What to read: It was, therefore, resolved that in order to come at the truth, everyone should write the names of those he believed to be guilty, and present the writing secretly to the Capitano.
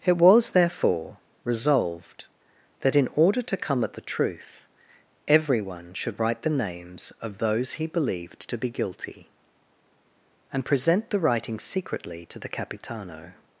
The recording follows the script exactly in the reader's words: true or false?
true